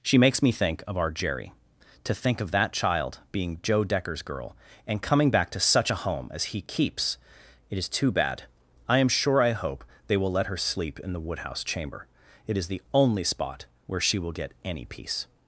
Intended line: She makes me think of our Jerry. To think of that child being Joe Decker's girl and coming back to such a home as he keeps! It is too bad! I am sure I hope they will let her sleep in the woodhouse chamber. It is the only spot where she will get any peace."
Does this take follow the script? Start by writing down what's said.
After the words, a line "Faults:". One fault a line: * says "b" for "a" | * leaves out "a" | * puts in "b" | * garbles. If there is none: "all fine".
She makes me think of our Jerry. To think of that child being Joe Decker's girl and coming back to such a home as he keeps! It is too bad! I am sure I hope they will let her sleep in the woodhouse chamber. It is the only spot where she will get any peace."
Faults:
all fine